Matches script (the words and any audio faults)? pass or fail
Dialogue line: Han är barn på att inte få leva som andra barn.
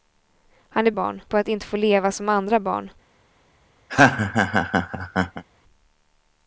fail